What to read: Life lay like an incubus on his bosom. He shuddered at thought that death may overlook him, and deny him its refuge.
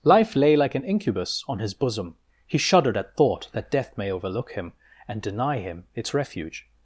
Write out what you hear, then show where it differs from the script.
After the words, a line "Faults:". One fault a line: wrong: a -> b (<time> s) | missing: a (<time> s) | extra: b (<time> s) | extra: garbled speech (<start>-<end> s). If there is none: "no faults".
Life lay like an incubus on his bosom. He shuddered at thought that death may overlook him, and deny him its refuge.
Faults:
no faults